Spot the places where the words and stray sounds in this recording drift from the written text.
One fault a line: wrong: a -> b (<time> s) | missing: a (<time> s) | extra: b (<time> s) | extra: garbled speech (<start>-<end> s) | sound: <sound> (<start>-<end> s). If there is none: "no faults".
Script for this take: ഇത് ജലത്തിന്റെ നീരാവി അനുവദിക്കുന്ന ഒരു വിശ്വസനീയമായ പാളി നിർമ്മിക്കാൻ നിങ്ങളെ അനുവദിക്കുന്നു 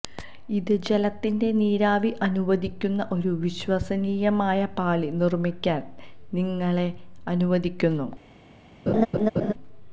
sound: laugh (8.9-9.5 s)